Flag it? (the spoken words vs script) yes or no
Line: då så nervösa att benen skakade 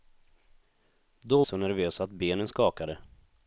no